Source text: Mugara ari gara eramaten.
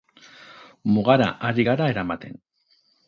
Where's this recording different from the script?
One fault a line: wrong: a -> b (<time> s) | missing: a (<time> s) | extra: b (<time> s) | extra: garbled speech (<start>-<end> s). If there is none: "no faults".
no faults